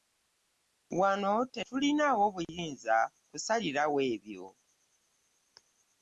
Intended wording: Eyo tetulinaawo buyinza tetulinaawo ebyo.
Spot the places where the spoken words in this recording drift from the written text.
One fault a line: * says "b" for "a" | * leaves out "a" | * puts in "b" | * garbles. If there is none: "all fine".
* says "Wano" for "Eyo"
* says "kusalirawo" for "tetulinaawo"